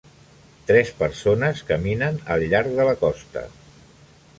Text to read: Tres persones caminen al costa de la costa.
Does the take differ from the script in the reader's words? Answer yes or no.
yes